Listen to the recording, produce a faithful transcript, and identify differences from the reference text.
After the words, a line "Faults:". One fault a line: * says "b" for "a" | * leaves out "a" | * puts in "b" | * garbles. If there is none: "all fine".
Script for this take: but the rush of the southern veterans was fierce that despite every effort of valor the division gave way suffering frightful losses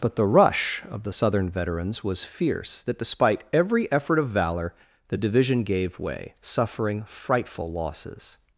but the rush of the southern veterans was fierce that despite every effort of valor the division gave way suffering frightful losses
Faults:
all fine